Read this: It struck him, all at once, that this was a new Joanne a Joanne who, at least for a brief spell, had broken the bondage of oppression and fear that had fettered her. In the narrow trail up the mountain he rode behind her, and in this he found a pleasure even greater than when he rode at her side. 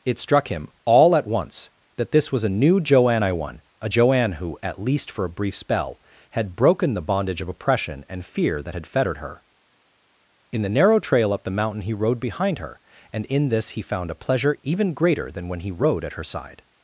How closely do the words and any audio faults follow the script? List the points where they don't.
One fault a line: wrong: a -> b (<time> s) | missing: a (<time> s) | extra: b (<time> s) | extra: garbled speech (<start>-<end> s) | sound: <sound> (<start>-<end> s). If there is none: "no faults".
extra: I won (3.2 s)